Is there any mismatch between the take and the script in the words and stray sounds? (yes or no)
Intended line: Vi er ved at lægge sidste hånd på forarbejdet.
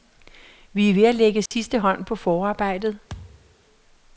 yes